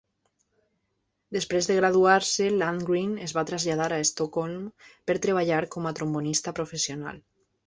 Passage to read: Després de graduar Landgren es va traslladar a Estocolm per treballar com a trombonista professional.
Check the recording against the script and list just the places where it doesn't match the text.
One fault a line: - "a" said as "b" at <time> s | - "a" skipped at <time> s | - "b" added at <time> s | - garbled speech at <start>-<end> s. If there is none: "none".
- "se" added at 2.3 s